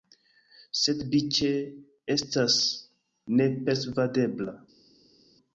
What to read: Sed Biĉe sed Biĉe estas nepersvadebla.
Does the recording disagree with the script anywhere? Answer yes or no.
yes